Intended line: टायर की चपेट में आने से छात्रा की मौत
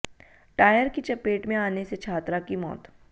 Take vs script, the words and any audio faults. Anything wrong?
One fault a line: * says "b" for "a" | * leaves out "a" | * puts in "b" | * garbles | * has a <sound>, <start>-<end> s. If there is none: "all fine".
all fine